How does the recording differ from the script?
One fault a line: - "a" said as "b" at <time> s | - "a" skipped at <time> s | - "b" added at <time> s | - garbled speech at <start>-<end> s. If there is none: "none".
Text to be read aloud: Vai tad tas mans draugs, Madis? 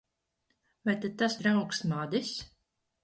- "mans" skipped at 1.4 s